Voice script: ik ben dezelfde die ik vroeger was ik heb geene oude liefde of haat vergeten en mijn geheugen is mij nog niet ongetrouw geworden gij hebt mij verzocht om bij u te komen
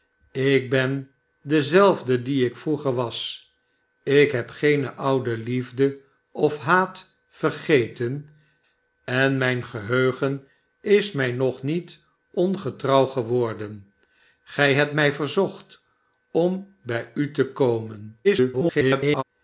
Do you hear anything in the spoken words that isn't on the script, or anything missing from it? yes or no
yes